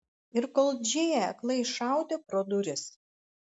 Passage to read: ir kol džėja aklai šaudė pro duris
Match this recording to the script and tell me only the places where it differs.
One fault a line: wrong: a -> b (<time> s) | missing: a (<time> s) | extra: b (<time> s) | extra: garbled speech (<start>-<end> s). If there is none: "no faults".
no faults